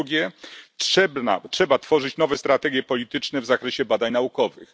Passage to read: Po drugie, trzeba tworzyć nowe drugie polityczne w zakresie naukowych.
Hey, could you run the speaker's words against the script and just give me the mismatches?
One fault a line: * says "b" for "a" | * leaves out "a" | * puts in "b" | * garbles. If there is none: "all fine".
* says "strategie" for "drugie"
* puts in "badań"